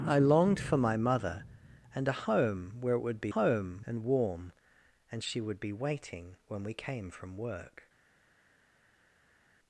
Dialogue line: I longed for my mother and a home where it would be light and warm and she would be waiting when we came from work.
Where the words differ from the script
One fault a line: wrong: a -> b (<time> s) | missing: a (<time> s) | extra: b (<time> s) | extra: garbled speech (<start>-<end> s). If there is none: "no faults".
wrong: light -> home (3.3 s)